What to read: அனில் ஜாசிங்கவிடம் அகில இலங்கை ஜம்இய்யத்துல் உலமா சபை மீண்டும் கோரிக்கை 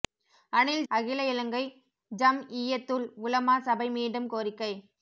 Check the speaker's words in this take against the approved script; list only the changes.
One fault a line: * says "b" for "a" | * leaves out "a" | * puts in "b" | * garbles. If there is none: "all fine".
* leaves out "ஜாசிங்கவிடம்"